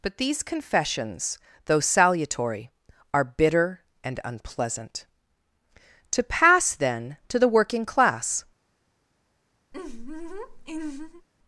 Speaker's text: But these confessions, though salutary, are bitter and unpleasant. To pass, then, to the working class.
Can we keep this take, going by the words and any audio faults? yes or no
no